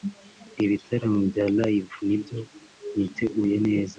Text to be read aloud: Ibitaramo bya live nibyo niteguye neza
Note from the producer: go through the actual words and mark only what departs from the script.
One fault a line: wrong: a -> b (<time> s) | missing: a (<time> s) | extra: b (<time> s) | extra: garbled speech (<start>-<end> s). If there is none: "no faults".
no faults